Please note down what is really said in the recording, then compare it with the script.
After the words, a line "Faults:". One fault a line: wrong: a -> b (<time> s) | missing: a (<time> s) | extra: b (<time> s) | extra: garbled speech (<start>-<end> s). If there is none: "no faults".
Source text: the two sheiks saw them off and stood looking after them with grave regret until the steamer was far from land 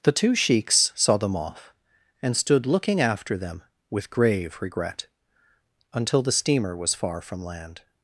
the two sheiks saw them off and stood looking after them with grave regret until the steamer was far from land
Faults:
no faults